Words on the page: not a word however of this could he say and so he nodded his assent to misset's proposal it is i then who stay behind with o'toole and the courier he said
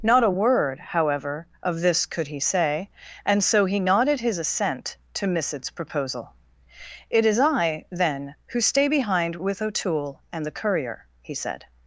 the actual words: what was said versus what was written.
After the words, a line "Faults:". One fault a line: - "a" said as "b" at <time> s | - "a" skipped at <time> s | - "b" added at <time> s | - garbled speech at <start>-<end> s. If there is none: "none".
not a word however of this could he say and so he nodded his assent to misset's proposal it is i then who stay behind with o'toole and the courier he said
Faults:
none